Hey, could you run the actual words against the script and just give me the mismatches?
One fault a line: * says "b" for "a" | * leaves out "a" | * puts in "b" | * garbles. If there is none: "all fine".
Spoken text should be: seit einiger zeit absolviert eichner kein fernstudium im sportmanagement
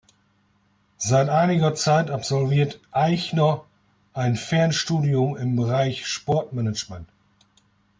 * says "ein" for "kein"
* puts in "bereich"